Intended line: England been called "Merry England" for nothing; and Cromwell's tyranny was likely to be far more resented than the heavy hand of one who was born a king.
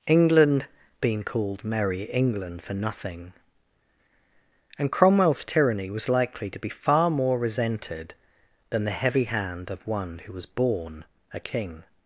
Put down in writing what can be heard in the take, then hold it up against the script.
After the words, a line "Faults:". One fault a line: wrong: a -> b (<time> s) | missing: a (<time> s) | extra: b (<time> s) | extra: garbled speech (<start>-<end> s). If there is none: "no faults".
England been called "Merry England" for nothing; and Cromwell's tyranny was likely to be far more resented than the heavy hand of one who was born a king.
Faults:
no faults